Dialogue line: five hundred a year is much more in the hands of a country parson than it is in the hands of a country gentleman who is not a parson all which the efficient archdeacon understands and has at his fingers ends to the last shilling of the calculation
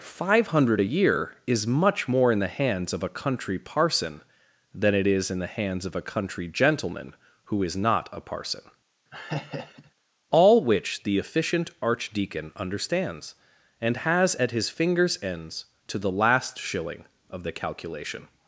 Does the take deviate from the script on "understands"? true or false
false